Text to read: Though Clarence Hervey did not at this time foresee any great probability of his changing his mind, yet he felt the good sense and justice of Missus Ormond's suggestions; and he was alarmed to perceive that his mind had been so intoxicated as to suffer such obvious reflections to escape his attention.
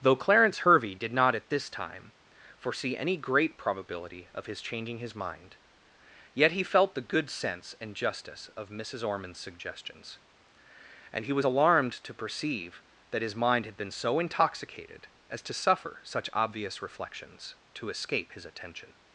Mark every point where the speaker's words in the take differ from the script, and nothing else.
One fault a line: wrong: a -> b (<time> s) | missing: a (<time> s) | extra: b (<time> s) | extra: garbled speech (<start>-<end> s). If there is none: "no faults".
no faults